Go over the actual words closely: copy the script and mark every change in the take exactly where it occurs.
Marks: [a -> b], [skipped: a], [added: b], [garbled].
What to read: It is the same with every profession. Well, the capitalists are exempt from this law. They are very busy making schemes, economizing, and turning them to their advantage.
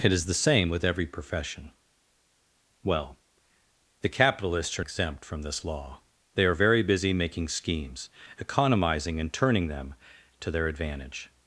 It is the same with every profession. Well, the capitalists are exempt from this law. They are very busy making schemes, economizing, and turning them to their advantage.